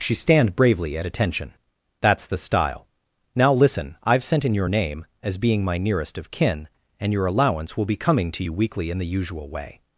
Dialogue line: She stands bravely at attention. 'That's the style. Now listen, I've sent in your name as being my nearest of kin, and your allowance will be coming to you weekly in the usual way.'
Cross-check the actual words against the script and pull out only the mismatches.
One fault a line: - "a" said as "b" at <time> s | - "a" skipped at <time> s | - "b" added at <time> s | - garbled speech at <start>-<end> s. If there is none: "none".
- "stands" said as "stand" at 0.1 s